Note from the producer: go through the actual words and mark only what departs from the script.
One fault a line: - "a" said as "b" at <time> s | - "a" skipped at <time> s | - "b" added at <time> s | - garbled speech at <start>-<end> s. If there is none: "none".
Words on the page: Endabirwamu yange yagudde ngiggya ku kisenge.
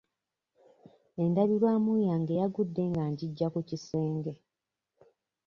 - "nga" added at 2.9 s